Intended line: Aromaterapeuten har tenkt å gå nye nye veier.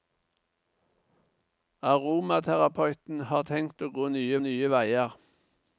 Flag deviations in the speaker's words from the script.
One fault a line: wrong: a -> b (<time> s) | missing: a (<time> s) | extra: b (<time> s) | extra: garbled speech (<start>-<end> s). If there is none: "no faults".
no faults